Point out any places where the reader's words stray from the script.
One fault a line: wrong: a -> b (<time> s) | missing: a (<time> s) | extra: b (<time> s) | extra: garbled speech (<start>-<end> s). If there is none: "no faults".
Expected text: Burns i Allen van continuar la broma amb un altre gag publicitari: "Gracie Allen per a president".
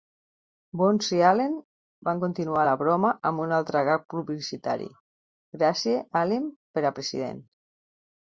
no faults